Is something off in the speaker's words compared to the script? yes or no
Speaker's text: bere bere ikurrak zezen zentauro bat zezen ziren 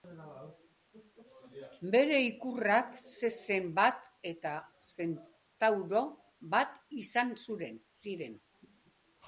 yes